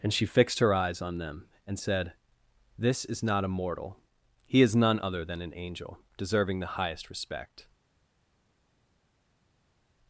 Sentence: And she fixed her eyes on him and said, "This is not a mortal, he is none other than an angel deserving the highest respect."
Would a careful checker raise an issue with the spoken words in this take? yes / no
yes